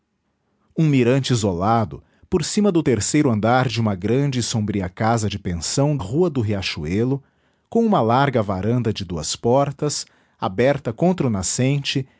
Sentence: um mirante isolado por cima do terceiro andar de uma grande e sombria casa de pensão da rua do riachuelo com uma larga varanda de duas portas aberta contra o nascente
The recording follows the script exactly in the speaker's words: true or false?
false